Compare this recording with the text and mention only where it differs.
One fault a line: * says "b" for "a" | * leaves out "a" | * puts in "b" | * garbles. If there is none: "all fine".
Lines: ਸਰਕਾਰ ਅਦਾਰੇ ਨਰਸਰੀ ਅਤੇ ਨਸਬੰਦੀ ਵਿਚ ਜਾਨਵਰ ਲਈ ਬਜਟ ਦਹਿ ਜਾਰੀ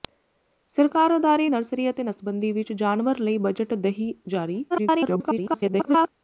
* garbles